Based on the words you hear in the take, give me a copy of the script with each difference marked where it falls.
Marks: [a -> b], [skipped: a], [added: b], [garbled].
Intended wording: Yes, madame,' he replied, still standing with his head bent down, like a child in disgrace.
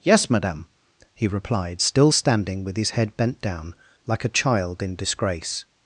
Yes, madame,' he replied, still standing with his head bent down, like a child in disgrace.